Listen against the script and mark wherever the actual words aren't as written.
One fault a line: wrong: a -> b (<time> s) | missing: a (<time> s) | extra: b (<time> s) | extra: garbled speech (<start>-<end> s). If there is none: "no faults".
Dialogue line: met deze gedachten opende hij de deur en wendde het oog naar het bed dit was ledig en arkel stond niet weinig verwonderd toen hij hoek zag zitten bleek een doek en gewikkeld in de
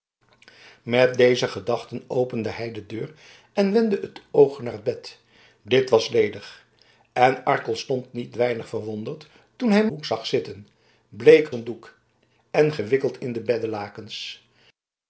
no faults